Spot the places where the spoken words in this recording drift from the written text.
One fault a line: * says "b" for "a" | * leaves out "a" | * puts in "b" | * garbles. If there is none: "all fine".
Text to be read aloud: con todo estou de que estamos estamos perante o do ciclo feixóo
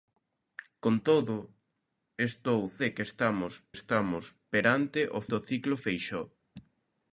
all fine